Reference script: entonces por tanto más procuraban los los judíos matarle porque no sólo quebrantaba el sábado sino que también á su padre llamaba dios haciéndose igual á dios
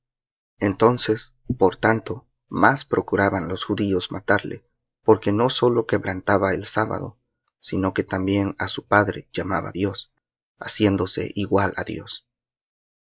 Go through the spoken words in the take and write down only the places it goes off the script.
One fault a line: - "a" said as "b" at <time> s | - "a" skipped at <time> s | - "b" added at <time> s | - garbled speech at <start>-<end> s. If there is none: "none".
- "los" skipped at 3.6 s